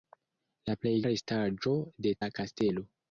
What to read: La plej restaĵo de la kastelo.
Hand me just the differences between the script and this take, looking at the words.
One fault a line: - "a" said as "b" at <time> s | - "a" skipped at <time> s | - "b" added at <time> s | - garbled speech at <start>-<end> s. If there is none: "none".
none